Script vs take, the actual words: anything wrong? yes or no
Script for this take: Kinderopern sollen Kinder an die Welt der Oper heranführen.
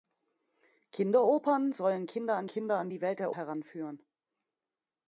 yes